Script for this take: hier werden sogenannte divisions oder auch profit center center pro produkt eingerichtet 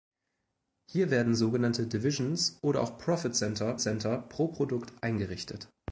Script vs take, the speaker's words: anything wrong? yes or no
no